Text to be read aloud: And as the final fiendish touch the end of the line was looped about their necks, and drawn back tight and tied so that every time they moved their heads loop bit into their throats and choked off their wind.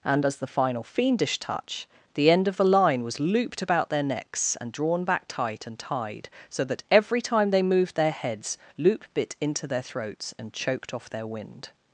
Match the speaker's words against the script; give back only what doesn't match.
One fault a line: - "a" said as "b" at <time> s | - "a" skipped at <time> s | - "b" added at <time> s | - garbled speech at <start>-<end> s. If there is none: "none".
none